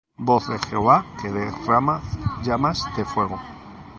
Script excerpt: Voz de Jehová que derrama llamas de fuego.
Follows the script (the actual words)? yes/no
yes